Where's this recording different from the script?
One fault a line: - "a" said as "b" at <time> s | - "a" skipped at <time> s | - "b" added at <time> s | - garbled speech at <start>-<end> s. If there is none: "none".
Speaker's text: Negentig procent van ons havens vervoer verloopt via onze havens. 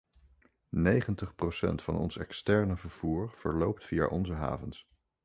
- "havens" said as "externe" at 2.1 s